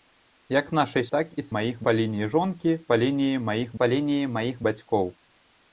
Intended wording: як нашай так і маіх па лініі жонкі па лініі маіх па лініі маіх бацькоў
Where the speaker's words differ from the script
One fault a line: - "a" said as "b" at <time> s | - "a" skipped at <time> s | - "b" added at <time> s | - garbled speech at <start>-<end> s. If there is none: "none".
none